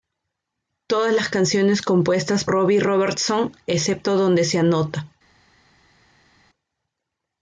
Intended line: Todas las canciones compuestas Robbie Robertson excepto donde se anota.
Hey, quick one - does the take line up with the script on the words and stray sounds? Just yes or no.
yes